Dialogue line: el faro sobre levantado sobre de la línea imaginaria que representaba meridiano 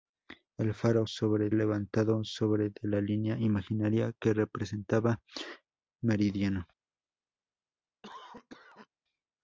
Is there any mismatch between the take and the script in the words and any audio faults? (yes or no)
yes